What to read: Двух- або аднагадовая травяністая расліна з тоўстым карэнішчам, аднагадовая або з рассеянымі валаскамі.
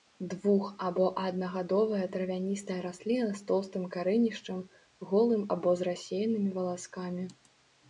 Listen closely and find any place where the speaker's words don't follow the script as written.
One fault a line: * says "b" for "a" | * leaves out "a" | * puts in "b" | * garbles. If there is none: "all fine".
* says "голым" for "аднагадовая"